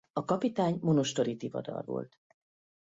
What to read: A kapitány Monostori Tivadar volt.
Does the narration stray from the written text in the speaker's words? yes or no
no